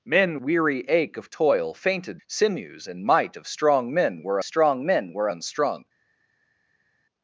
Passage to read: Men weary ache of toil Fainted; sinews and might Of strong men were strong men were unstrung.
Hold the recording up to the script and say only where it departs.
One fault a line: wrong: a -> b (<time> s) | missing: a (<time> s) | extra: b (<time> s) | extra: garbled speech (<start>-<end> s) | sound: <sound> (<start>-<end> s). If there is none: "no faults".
no faults